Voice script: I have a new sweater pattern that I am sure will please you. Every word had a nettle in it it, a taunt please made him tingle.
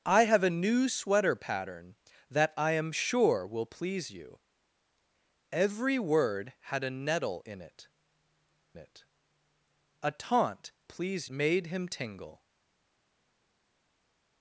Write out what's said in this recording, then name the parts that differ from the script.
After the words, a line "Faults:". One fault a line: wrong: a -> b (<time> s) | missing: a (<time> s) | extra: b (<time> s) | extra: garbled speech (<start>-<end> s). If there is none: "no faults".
I have a new sweater pattern that I am sure will please you. Every word had a nettle in it it, a taunt please made him tingle.
Faults:
no faults